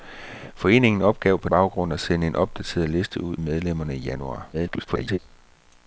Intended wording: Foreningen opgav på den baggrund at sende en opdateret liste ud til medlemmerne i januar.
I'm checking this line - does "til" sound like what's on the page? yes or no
no